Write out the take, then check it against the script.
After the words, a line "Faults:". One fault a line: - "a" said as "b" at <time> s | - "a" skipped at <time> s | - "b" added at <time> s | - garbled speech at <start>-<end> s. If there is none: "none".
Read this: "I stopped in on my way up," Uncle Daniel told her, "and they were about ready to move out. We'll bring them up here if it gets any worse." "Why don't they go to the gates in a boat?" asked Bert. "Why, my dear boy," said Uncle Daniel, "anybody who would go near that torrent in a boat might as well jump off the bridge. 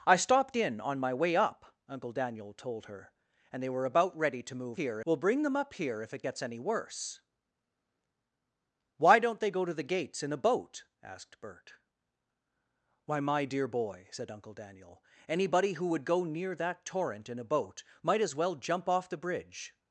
"I stopped in on my way up," Uncle Daniel told her, "and they were about ready to move here. We'll bring them up here if it gets any worse." "Why don't they go to the gates in a boat?" asked Bert. "Why, my dear boy," said Uncle Daniel, "anybody who would go near that torrent in a boat might as well jump off the bridge.
Faults:
- "out" said as "here" at 4.7 s